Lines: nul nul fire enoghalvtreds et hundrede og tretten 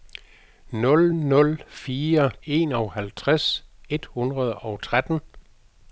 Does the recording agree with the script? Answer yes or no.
yes